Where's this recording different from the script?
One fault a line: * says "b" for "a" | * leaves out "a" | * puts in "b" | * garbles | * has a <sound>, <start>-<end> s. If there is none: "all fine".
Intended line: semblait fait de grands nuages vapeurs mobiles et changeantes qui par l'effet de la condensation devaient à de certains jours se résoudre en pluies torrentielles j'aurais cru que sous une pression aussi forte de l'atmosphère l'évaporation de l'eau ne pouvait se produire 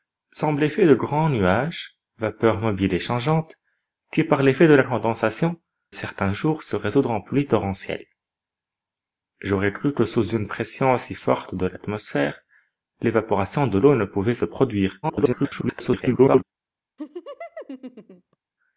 * leaves out "devaient à de"
* garbles
* has a laugh, 17.0-18.4 s